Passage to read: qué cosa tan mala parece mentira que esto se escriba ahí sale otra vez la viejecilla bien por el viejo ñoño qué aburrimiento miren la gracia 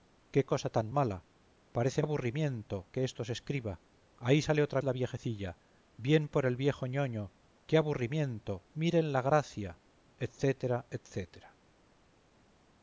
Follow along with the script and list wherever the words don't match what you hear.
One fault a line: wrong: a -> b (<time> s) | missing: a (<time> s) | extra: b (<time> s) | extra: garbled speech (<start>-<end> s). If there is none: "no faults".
wrong: mentira -> aburrimiento (2.0 s)
missing: vez (4.8 s)